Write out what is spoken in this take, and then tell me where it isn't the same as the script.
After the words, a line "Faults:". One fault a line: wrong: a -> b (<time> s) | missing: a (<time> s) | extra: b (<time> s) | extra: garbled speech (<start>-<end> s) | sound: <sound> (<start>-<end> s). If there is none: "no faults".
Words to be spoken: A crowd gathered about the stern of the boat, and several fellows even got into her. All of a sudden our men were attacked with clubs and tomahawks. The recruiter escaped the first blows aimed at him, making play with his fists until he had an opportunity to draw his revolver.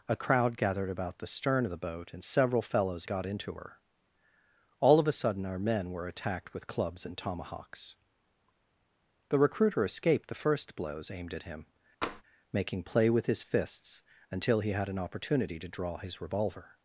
A crowd gathered about the stern of the boat, and several fellows got into her. All of a sudden our men were attacked with clubs and tomahawks. The recruiter escaped the first blows aimed at him, making play with his fists until he had an opportunity to draw his revolver.
Faults:
missing: even (3.1 s)
sound: tap (12.0-12.2 s)